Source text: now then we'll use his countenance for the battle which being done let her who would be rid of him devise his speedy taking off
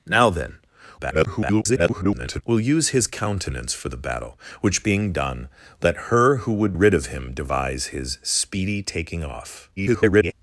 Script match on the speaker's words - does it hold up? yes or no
no